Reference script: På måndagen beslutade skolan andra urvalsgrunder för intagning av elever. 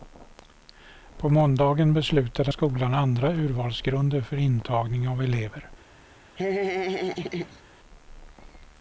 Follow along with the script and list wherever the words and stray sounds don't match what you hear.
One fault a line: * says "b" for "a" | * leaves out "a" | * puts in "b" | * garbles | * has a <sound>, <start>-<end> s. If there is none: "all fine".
* has a laugh, 6.4-7.6 s